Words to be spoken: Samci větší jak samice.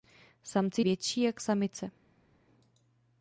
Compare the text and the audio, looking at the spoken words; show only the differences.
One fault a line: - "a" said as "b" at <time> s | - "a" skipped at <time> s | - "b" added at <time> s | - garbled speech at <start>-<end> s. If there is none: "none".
none